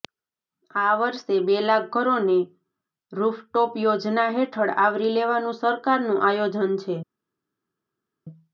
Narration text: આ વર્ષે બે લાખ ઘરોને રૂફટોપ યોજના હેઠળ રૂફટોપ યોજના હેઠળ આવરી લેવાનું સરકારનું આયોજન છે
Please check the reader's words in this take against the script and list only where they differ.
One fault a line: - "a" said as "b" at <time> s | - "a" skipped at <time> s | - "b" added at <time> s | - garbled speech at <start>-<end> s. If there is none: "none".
- "રૂફટોપ યોજના હેઠળ" skipped at 4.8 s